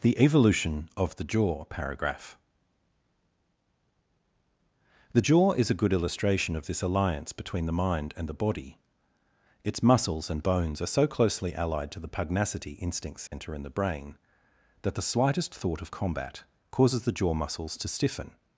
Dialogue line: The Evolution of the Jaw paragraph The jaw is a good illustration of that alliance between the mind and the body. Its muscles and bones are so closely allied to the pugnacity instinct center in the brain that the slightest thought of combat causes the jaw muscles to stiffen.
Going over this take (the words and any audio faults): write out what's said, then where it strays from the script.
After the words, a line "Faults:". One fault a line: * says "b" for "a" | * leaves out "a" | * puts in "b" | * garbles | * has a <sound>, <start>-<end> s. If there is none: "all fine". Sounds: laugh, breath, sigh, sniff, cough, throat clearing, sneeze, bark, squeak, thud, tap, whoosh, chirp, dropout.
The Evolution of the Jaw paragraph The jaw is a good illustration of this alliance between the mind and the body. Its muscles and bones are so closely allied to the pugnacity instinct center in the brain that the slightest thought of combat causes the jaw muscles to stiffen.
Faults:
* says "this" for "that"
* has a dropout, 13.3-13.3 s